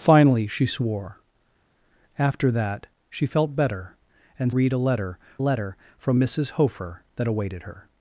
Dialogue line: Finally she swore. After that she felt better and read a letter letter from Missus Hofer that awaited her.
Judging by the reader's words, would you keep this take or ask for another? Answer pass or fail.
pass